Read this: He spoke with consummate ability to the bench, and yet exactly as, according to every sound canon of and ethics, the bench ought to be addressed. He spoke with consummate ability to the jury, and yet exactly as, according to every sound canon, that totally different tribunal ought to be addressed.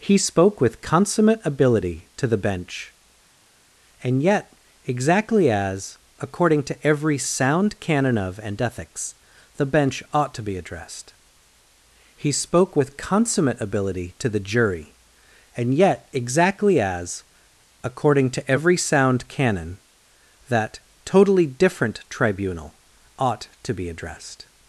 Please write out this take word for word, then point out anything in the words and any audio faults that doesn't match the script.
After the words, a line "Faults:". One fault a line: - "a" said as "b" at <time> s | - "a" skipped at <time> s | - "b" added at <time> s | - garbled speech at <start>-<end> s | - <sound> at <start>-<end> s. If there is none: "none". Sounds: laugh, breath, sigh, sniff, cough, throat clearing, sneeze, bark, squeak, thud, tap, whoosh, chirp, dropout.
He spoke with consummate ability to the bench, and yet exactly as, according to every sound canon of and ethics, the bench ought to be addressed. He spoke with consummate ability to the jury, and yet exactly as, according to every sound canon, that totally different tribunal ought to be addressed.
Faults:
none